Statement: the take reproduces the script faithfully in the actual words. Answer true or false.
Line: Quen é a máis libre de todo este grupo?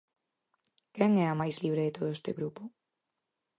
true